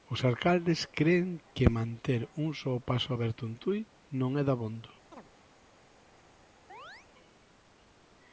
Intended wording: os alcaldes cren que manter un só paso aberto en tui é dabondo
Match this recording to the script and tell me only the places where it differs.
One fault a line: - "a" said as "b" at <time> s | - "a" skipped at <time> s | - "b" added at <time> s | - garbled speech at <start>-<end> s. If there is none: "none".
- "non" added at 4.2 s